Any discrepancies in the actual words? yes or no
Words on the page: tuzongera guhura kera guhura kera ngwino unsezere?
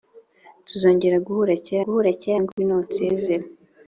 no